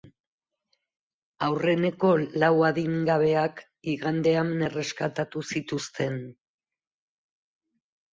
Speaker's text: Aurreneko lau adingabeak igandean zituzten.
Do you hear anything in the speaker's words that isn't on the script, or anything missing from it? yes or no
yes